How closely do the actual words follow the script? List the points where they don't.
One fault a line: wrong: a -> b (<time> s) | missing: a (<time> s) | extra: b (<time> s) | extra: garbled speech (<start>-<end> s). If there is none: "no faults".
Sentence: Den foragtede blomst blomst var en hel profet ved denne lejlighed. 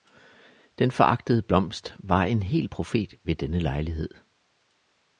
missing: blomst (1.9 s)